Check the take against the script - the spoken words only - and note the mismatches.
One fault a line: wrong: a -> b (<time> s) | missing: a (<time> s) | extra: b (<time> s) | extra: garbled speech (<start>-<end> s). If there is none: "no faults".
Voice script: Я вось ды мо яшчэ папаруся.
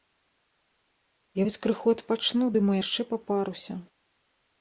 extra: крыху адпачну (1.7 s)